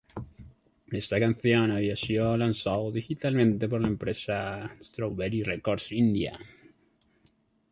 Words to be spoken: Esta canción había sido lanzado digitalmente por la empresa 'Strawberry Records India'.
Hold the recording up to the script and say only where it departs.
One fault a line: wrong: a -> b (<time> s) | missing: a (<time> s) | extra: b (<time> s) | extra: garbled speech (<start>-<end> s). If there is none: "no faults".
no faults